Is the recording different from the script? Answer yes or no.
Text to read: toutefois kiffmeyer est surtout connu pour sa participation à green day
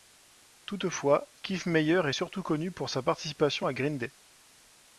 no